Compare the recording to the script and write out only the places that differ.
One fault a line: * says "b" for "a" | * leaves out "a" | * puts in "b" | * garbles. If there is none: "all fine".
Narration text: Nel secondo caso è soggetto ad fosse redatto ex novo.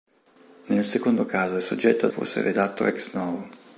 all fine